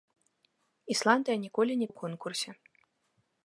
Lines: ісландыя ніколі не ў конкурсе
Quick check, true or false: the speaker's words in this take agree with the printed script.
true